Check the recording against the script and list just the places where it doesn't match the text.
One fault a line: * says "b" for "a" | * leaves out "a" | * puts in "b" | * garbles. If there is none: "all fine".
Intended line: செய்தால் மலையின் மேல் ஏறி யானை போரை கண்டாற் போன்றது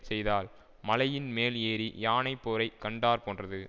all fine